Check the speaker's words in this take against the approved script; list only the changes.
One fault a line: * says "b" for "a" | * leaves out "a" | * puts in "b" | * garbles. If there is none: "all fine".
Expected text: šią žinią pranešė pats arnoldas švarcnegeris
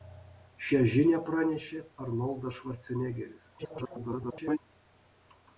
* leaves out "pats"
* garbles